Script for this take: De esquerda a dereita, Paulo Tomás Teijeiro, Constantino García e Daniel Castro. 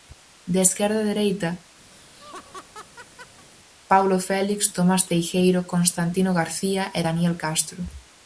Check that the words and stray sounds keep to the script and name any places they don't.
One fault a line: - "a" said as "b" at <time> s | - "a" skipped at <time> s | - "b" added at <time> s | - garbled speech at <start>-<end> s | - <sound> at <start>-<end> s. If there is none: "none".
- laugh at 1.9-3.5 s
- "Félix" added at 4.3 s